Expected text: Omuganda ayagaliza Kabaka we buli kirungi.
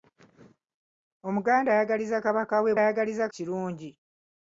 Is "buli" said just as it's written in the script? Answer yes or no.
no